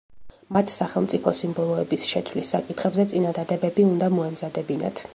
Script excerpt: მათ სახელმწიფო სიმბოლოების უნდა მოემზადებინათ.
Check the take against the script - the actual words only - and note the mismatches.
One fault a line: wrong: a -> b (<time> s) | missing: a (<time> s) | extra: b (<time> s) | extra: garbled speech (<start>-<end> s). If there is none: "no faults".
extra: შეცვლის საკითხებზე წინადადებები (2.1 s)